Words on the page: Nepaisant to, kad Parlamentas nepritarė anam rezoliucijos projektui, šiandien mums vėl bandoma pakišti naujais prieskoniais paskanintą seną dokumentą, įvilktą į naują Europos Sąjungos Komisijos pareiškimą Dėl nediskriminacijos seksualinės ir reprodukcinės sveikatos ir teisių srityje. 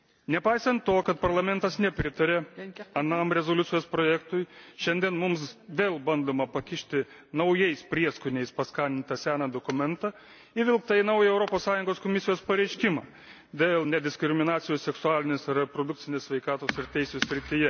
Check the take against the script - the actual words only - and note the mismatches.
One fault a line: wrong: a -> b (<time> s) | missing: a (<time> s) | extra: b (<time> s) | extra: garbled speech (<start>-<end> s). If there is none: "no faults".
no faults